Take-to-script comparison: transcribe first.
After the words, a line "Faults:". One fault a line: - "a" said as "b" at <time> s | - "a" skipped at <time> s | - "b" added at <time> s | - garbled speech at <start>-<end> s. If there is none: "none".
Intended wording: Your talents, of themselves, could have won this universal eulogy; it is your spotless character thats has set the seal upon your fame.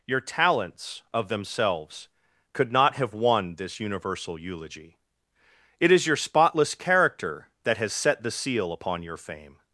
Your talents, of themselves, could not have won this universal eulogy; it is your spotless character that has set the seal upon your fame.
Faults:
- "not" added at 2.7 s
- "thats" said as "that" at 7.6 s